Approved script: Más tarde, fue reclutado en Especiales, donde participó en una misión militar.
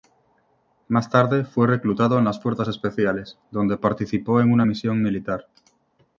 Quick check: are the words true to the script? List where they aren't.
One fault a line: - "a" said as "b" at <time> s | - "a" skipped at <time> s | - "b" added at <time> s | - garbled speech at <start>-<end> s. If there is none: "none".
- "las Fuerzas" added at 2.2 s